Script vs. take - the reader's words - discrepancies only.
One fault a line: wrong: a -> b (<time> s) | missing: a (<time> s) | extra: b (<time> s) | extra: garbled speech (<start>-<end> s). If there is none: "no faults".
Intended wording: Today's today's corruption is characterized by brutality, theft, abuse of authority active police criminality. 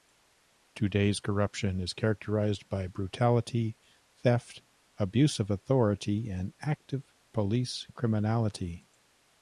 missing: today's (1.2 s)
extra: and (6.3 s)